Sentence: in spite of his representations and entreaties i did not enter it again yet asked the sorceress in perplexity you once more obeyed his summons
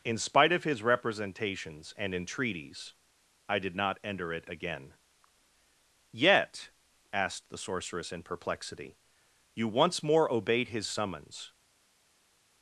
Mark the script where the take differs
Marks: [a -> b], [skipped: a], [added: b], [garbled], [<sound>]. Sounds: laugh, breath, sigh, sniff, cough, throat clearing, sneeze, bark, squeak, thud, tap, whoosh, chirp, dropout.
in spite of his representations and entreaties i did not enter it again yet asked the sorceress in perplexity you once more obeyed his summons